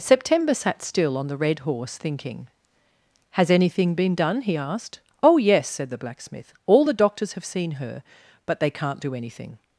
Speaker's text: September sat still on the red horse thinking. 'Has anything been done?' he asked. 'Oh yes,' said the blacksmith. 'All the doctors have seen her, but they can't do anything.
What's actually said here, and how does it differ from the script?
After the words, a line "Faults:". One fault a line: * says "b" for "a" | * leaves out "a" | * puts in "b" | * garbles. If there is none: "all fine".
September sat still on the red horse thinking. 'Has anything been done?' he asked. 'Oh yes,' said the blacksmith. 'All the doctors have seen her, but they can't do anything.
Faults:
all fine